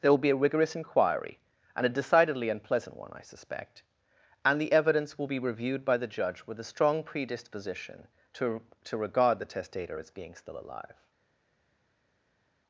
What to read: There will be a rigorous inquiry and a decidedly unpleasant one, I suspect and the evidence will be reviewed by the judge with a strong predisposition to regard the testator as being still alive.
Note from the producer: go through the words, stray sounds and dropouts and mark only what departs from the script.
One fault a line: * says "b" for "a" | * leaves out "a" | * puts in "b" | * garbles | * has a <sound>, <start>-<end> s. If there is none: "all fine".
* puts in "to"